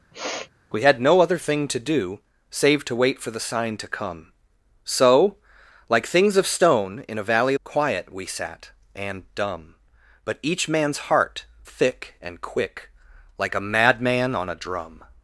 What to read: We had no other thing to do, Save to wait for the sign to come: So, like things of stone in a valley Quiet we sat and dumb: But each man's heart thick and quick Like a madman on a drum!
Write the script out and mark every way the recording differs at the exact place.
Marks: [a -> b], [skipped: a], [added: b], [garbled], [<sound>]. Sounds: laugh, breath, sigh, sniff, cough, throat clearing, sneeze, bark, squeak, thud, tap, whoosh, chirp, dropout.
[sniff] We had no other thing to do, Save to wait for the sign to come: So, like things of stone in a valley Quiet we sat and dumb: But each man's heart thick and quick Like a madman on a drum!